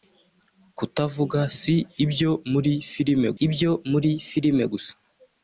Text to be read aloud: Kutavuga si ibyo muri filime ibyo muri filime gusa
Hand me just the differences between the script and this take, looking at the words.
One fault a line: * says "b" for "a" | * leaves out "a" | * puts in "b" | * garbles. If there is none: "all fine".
all fine